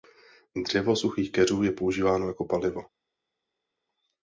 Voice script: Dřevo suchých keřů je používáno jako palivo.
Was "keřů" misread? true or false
false